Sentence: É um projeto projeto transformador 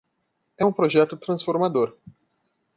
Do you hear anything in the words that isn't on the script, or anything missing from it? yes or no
yes